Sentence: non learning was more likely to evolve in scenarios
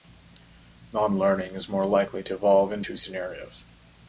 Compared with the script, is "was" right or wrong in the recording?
wrong